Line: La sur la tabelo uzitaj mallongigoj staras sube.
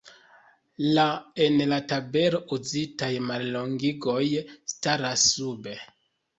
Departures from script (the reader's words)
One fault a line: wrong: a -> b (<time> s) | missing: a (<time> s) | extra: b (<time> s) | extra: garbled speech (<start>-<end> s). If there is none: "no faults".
wrong: sur -> en (1.5 s)